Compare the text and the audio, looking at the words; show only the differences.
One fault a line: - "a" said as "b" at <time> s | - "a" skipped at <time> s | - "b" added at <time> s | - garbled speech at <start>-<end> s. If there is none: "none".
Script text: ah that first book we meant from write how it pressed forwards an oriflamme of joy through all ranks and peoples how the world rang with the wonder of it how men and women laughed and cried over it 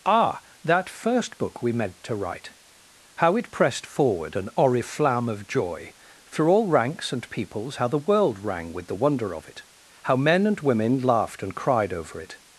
- "from" said as "to" at 2.0 s
- "forwards" said as "forward" at 3.9 s